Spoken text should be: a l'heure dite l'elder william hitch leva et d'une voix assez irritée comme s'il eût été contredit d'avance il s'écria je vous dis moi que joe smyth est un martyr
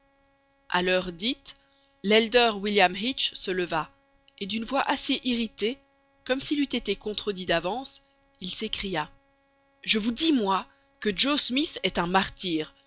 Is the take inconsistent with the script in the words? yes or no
yes